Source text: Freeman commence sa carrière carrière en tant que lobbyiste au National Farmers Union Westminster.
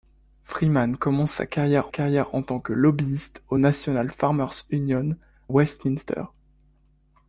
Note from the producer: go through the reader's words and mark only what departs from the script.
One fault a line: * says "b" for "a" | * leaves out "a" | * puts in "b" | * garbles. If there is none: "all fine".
all fine